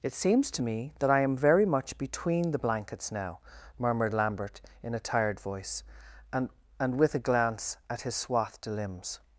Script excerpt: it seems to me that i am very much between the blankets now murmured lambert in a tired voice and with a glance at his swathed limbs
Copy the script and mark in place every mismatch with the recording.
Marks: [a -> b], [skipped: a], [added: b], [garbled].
it seems to me that i am very much between the blankets now murmured lambert in a tired voice and [added: and] with a glance at his swathed limbs